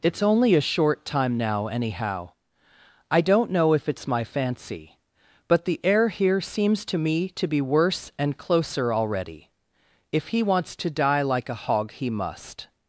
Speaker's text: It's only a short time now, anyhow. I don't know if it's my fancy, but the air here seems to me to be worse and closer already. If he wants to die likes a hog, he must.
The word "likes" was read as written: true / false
false